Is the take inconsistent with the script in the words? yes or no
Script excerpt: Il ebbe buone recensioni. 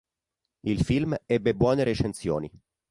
yes